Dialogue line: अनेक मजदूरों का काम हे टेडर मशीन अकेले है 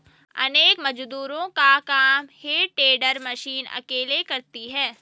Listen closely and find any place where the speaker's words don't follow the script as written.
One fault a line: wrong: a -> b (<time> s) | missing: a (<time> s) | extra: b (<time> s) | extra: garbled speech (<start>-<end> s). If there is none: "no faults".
extra: करती (4.2 s)